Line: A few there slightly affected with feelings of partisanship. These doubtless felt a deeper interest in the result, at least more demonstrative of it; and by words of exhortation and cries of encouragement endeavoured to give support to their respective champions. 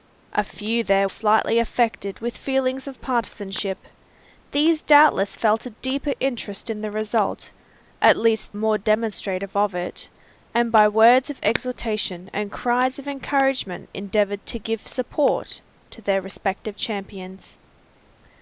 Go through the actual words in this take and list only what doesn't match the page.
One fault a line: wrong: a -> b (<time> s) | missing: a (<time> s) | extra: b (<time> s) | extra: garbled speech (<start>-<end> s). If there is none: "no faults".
no faults